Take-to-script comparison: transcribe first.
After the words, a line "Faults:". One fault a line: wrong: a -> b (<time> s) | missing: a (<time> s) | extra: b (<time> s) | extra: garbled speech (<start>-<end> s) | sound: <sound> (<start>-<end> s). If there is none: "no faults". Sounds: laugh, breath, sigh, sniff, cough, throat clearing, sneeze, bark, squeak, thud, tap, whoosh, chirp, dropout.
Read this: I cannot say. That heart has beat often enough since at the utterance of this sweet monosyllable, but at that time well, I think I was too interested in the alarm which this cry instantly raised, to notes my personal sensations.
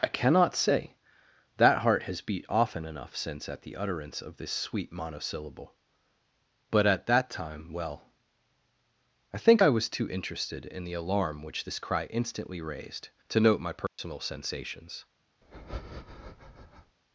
I cannot say. That heart has beat often enough since at the utterance of this sweet monosyllable, but at that time well, I think I was too interested in the alarm which this cry instantly raised, to note my personal sensations.
Faults:
wrong: notes -> note (13.4 s)
sound: dropout (13.9-14.0 s)
sound: breath (15.4-17.0 s)